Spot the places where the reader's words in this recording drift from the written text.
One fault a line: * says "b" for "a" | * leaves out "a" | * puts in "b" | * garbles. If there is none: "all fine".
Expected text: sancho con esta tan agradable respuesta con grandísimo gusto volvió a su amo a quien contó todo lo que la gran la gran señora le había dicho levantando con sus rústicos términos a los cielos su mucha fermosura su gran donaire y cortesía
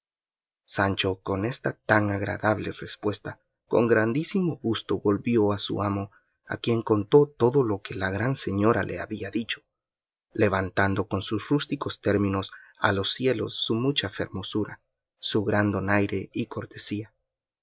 * leaves out "la gran"